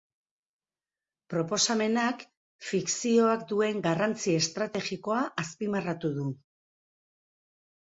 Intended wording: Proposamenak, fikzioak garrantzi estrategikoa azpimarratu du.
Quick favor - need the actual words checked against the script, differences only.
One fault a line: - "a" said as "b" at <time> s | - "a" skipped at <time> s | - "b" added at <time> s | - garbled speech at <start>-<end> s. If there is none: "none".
- "duen" added at 3.5 s